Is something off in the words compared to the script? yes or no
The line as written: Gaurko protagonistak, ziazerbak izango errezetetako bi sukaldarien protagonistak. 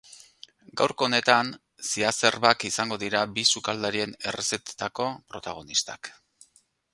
yes